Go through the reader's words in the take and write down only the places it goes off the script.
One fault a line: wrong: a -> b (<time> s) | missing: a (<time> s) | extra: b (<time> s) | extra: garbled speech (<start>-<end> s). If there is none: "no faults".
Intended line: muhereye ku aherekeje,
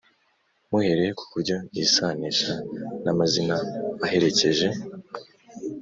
extra: buryo yisanisha n'amazina (1.3 s)